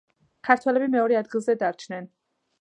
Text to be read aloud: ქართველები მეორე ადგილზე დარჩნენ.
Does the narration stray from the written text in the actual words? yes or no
no